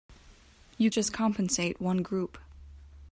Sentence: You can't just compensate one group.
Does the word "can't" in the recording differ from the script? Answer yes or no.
yes